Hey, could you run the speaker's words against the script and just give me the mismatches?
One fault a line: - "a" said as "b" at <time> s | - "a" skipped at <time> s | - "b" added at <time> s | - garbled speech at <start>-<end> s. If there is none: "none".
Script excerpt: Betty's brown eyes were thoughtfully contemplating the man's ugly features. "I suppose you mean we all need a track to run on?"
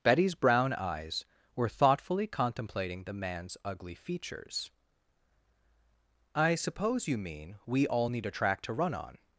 none